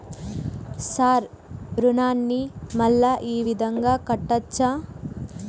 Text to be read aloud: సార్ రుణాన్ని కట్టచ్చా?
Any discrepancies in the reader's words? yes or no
yes